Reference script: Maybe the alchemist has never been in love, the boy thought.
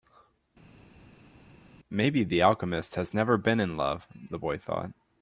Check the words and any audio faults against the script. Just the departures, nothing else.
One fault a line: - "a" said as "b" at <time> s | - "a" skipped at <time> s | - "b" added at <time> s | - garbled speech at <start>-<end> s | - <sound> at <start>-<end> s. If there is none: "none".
none